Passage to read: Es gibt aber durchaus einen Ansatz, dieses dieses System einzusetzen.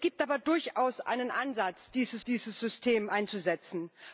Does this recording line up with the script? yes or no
yes